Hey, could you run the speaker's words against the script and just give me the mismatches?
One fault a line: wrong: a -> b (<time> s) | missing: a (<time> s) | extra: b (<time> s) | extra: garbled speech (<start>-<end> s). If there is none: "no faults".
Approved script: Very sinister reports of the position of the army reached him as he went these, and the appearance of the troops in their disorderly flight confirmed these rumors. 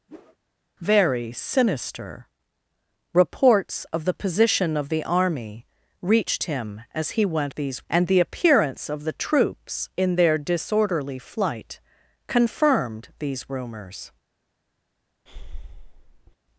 no faults